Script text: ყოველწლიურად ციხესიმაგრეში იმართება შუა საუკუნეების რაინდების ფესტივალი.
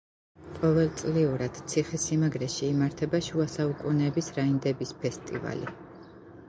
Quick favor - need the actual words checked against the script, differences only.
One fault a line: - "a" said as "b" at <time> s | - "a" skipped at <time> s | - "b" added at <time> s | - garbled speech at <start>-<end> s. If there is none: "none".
none